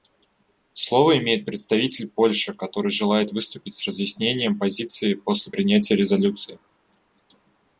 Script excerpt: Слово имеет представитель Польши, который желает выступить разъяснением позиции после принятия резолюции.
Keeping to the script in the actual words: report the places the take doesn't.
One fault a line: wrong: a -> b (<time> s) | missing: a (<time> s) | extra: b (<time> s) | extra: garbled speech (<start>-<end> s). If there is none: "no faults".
extra: с (3.8 s)